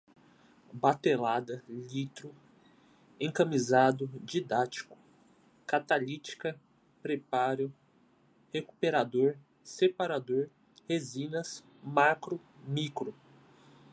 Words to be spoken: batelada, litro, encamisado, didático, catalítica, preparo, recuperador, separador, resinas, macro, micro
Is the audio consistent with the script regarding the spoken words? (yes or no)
yes